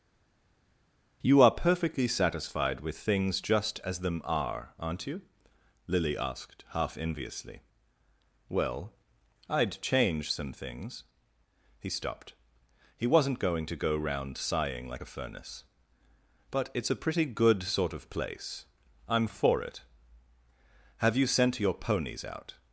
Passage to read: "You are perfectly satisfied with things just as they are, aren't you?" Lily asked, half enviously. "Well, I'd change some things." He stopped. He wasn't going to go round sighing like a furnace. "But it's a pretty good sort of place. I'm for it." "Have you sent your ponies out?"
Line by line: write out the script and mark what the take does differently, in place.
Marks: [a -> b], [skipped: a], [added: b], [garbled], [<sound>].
"You are perfectly satisfied with things just as [they -> them] are, aren't you?" Lily asked, half enviously. "Well, I'd change some things." He stopped. He wasn't going to go round sighing like a furnace. "But it's a pretty good sort of place. I'm for it." "Have you sent your ponies out?"